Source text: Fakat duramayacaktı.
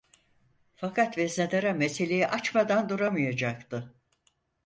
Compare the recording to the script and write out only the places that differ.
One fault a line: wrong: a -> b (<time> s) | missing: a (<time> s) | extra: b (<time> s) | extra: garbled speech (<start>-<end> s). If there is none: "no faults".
extra: veznedara meseleyi açmadan (1.2 s)